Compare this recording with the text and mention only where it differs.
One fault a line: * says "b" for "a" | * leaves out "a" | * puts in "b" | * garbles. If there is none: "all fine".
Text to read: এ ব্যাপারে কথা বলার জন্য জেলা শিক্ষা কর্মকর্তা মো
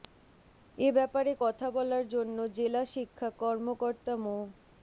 all fine